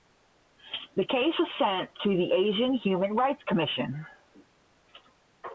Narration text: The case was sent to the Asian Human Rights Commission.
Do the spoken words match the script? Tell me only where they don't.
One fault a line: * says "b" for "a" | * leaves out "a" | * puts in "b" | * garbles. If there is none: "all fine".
all fine